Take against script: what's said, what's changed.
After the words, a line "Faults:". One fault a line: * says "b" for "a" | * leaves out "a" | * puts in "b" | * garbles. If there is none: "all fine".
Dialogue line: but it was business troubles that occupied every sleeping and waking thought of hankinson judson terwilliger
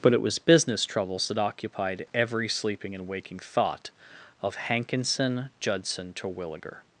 but it was business troubles that occupied every sleeping and waking thought of hankinson judson terwilliger
Faults:
all fine